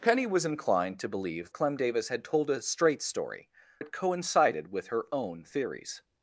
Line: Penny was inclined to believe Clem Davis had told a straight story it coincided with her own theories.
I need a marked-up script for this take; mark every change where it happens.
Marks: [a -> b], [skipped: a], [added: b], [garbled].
Penny was inclined to believe Clem Davis had told a straight story it coincided with her own theories.